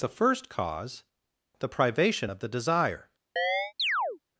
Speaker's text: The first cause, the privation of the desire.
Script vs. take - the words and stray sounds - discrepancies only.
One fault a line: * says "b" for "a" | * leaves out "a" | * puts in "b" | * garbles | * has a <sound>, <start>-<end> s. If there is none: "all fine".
* has a chirp, 3.4-4.2 s